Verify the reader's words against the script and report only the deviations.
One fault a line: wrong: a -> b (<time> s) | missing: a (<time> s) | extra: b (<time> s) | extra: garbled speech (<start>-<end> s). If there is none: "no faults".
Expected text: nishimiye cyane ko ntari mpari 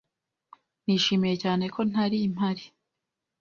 no faults